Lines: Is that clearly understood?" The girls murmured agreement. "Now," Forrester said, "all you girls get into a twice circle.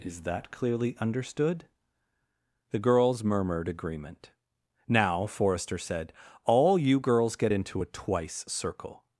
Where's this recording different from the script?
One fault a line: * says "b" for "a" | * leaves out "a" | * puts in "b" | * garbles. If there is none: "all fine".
all fine